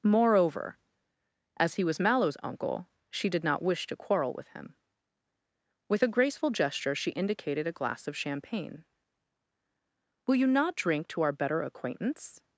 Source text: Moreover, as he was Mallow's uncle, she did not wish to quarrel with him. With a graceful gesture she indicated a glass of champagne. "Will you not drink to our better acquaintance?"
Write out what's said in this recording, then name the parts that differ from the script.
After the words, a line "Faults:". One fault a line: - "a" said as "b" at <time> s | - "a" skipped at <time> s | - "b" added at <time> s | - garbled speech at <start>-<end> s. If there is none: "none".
Moreover, as he was Mallow's uncle, she did not wish to quarrel with him. With a graceful gesture she indicated a glass of champagne. "Will you not drink to our better acquaintance?"
Faults:
none